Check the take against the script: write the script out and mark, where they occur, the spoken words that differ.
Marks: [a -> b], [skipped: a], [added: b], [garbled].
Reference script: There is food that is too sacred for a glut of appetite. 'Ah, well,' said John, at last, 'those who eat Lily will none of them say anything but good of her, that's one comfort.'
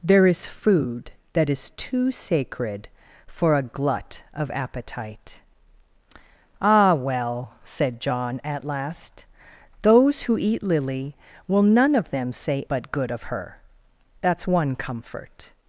There is food that is too sacred for a glut of appetite. 'Ah, well,' said John, at last, 'those who eat Lily will none of them say [skipped: anything] but good of her, that's one comfort.'